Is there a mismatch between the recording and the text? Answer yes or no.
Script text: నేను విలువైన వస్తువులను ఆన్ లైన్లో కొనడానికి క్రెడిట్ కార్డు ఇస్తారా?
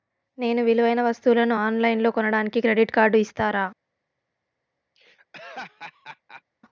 no